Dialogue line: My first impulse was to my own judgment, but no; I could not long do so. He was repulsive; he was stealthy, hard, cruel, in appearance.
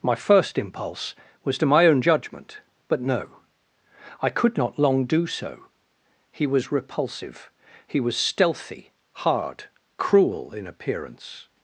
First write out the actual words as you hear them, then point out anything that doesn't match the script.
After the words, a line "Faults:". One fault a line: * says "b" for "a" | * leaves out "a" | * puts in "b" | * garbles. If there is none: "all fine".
My first impulse was to my own judgment, but no; I could not long do so. He was repulsive; he was stealthy, hard, cruel, in appearance.
Faults:
all fine